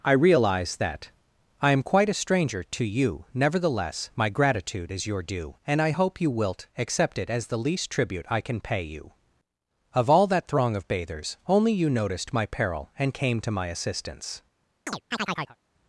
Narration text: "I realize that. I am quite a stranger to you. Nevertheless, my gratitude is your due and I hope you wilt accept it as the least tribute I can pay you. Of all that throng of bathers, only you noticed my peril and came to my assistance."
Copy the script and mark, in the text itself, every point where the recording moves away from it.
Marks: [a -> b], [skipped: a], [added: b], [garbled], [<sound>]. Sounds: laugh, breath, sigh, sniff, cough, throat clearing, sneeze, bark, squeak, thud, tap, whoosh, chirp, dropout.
"I realize that. I am quite a stranger to you. Nevertheless, my gratitude is your due and I hope you wilt accept it as the least tribute I can pay you. Of all that throng of bathers, only you noticed my peril and came to my assistance." [chirp]